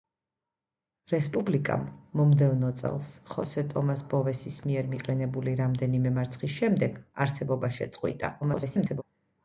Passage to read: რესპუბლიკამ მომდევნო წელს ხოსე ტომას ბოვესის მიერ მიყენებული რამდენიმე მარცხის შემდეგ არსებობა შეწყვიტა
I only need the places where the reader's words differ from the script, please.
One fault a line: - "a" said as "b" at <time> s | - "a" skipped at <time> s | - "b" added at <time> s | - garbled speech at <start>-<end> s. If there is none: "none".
- garbled speech at 8.4-9.0 s